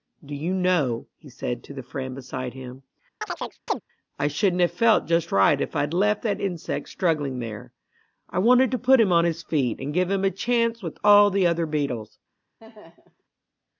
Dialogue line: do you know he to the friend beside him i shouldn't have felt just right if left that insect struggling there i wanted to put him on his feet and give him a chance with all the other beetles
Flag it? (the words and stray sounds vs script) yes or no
yes